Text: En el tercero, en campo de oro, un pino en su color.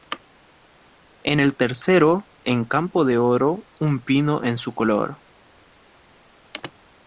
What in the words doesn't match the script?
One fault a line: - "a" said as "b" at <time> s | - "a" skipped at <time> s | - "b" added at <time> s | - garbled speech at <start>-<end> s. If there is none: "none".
none